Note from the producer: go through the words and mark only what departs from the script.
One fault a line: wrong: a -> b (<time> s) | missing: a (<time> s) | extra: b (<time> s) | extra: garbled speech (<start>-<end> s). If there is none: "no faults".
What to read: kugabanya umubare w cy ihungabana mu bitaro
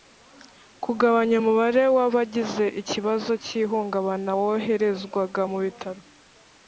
extra: abagize ikibazo (2.1 s)
extra: woherezwaga (4.4 s)